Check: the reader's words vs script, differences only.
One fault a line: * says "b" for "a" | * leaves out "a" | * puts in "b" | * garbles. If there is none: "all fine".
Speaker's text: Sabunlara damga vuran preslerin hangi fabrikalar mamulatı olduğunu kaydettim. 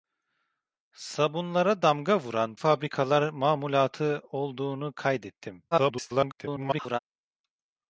* leaves out "preslerin hangi"
* garbles